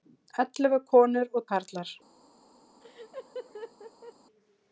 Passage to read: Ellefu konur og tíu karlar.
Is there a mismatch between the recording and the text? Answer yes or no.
yes